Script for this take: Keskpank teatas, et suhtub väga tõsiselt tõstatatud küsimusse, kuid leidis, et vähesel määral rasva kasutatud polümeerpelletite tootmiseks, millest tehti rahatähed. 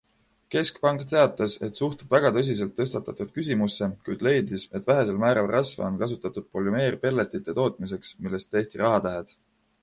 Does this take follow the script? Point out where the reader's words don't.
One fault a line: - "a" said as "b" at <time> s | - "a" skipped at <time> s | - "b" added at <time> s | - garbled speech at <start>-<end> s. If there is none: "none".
- "on" added at 5.9 s